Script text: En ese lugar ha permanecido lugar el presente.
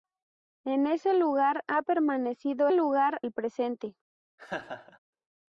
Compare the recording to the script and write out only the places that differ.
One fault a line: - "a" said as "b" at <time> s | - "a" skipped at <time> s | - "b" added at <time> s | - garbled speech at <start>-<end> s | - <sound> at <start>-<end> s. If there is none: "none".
- laugh at 4.4-5.0 s